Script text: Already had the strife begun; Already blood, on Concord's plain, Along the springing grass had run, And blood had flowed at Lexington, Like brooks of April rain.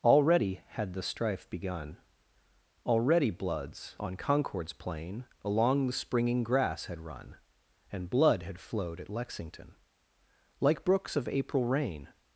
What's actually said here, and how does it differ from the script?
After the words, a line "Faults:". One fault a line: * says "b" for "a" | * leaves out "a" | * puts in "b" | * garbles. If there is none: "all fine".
Already had the strife begun; Already bloods, on Concord's plain, Along the springing grass had run, And blood had flowed at Lexington, Like brooks of April rain.
Faults:
* says "bloods" for "blood"